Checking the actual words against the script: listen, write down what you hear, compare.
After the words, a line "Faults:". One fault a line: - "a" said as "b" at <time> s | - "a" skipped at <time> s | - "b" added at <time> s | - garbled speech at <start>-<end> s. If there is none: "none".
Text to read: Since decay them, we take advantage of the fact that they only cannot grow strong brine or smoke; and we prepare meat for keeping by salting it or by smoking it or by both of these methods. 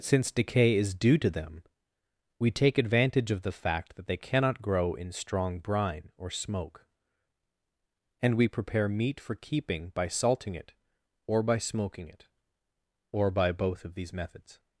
Since decay is due to them, we take advantage of the fact that they cannot grow in strong brine or smoke; and we prepare meat for keeping by salting it or by smoking it or by both of these methods.
Faults:
- "is due to" added at 0.8 s
- "only" skipped at 4.2 s
- "in" added at 5.0 s